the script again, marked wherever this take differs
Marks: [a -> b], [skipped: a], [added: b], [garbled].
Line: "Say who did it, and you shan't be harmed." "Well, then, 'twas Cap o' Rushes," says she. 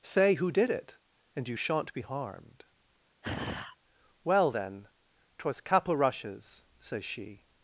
"Say who did it, and you shan't be harmed." "Well, then, 'twas Cap o' Rushes," says she.